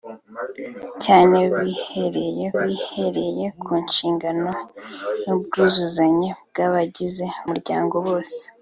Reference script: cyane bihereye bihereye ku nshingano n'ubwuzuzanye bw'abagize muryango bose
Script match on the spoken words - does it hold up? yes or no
yes